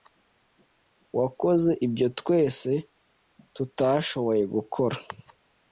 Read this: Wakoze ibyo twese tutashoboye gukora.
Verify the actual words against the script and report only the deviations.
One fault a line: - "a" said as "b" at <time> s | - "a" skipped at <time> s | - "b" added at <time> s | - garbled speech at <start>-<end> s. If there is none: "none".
none